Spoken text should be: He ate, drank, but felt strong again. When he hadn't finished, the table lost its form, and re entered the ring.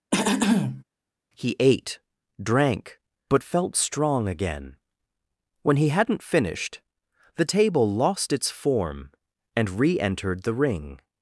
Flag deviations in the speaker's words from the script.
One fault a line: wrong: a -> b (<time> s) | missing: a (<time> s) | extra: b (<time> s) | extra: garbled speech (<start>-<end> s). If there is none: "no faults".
no faults